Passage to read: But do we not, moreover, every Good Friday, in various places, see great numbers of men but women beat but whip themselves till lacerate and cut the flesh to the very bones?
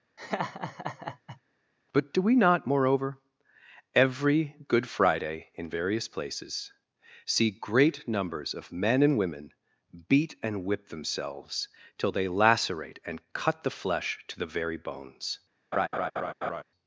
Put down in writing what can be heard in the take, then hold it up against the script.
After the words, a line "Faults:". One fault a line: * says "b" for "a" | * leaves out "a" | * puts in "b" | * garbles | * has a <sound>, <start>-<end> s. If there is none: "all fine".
But do we not, moreover, every Good Friday, in various places, see great numbers of men and women beat and whip themselves till they lacerate and cut the flesh to the very bones?
Faults:
* has a laugh, 0.2-1.4 s
* says "and" for "but"
* says "and" for "but"
* puts in "they"
* has a laugh, 15.7-16.6 s